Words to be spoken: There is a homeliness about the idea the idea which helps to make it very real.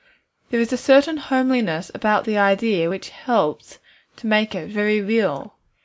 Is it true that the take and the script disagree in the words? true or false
true